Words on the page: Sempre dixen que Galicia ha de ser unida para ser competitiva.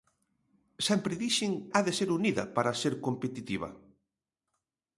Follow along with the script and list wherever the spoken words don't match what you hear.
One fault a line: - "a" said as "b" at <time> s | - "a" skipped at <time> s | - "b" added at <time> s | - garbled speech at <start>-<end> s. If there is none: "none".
- "que Galicia" skipped at 1.5 s